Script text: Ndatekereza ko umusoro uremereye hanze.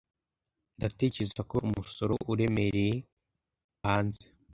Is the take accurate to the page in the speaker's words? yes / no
yes